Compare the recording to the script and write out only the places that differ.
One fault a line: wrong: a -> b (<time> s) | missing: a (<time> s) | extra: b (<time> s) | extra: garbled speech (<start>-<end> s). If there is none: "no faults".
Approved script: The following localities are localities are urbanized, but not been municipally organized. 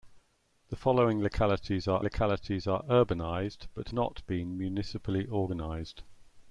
no faults